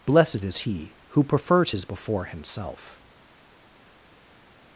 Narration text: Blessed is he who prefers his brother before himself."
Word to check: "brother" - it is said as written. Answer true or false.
false